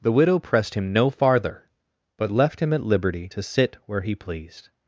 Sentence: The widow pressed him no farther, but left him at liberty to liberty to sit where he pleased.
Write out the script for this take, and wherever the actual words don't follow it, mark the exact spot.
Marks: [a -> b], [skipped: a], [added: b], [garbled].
The widow pressed him no farther, but left him at liberty to [skipped: liberty to] sit where he pleased.